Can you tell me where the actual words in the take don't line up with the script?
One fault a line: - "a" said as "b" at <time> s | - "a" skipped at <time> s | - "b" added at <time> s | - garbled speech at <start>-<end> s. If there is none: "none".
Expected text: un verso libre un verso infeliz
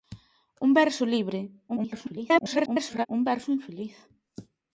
- garbled speech at 1.7-3.1 s